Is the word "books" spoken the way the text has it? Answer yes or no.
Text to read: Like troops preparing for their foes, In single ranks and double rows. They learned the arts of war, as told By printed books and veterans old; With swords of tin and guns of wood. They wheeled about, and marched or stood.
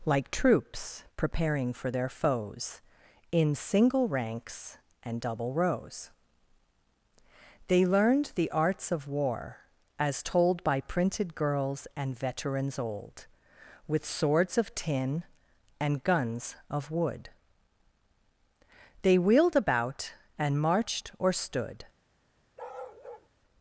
no